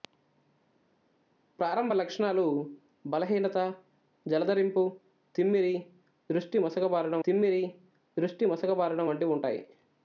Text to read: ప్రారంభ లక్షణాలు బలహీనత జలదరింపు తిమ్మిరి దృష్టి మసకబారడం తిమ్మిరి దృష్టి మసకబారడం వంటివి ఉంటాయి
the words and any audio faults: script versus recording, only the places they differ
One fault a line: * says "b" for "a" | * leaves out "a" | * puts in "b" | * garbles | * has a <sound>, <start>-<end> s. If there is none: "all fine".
all fine